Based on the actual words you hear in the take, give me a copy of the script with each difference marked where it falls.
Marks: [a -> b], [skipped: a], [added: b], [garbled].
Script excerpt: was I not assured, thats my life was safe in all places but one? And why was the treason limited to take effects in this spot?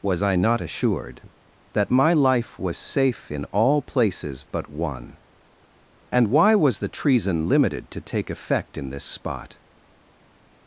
was I not assured, [thats -> that] my life was safe in all places but one? And why was the treason limited to take [effects -> effect] in this spot?